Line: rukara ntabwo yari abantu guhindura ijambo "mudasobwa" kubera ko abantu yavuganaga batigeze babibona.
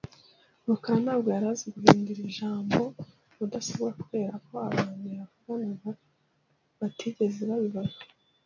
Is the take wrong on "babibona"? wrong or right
right